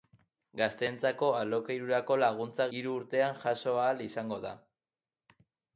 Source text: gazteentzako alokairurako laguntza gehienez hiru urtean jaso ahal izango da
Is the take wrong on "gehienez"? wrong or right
wrong